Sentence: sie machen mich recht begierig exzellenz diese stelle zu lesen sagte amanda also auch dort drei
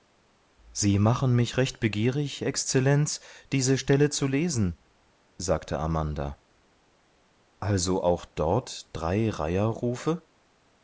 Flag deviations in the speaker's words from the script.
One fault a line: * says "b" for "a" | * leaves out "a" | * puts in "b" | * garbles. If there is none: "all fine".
all fine